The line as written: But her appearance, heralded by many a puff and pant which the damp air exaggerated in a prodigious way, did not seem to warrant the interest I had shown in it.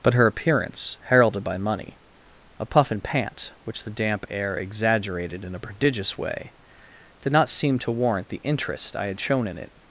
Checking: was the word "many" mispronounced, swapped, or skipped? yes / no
yes